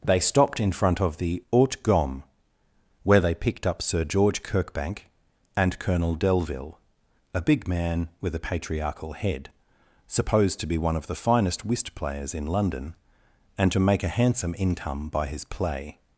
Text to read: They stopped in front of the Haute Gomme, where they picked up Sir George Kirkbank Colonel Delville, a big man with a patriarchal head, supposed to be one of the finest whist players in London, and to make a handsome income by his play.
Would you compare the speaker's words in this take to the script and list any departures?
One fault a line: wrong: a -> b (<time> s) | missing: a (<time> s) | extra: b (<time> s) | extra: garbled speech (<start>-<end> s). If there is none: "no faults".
extra: and (5.5 s)